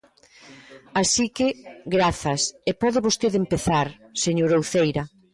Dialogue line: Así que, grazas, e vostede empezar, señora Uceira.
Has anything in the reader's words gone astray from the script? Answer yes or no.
yes